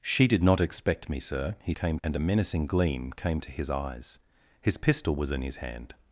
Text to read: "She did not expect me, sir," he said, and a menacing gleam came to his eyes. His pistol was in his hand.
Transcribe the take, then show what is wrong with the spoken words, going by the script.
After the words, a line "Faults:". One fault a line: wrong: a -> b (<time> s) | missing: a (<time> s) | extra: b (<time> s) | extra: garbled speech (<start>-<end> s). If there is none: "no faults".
"She did not expect me, sir," he came, and a menacing gleam came to his eyes. His pistol was in his hand.
Faults:
wrong: said -> came (1.7 s)